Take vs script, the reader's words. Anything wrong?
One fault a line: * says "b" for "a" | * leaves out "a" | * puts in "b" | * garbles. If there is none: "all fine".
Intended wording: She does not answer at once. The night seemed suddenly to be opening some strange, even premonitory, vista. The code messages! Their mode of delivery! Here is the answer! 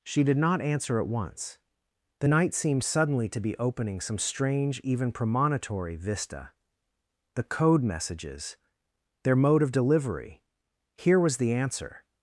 * says "did" for "does"
* says "was" for "is"